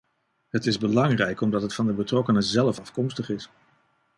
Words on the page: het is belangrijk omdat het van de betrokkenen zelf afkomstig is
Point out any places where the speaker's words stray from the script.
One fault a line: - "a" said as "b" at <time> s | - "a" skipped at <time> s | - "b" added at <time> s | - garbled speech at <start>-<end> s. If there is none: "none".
none